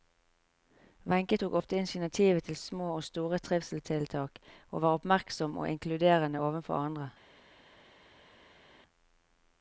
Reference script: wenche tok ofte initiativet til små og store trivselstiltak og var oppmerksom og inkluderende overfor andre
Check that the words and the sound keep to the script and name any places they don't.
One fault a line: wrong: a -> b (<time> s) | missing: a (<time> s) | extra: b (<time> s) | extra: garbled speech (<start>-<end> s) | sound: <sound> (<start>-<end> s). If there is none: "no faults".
no faults